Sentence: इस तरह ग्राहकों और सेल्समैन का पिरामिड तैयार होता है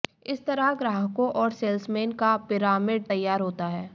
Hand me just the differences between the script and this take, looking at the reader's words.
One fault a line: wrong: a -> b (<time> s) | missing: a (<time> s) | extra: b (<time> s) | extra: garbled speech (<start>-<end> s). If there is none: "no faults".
no faults